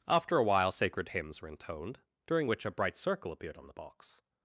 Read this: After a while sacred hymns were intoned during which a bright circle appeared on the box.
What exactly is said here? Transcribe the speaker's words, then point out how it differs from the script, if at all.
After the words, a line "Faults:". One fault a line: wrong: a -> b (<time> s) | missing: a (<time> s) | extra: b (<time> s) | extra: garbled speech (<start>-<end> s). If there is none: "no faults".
After a while sacred hymns were intoned during which a bright circle appeared on the box.
Faults:
no faults